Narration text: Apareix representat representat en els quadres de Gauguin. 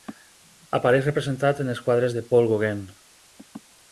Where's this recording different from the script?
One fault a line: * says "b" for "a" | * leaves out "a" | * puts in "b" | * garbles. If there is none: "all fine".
* leaves out "representat"
* puts in "Paul"